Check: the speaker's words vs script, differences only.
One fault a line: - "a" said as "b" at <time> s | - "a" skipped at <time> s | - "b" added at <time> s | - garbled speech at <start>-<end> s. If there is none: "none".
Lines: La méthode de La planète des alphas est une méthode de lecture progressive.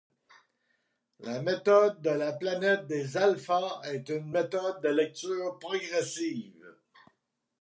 none